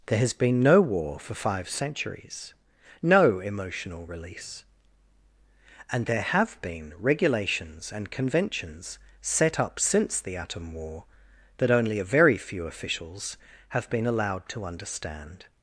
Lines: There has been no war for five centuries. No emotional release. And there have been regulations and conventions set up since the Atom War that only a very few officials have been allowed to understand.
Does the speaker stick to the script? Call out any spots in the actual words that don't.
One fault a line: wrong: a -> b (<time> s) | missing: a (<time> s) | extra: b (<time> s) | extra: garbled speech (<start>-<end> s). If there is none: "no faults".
no faults